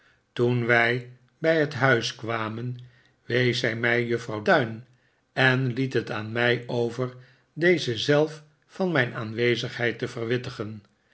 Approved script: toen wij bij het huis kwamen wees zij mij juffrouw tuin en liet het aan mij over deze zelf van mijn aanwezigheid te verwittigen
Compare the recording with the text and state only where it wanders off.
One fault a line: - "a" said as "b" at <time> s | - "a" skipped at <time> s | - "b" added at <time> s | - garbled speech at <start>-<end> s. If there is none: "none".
none